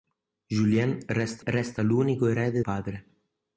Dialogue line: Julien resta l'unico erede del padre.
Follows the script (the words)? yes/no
no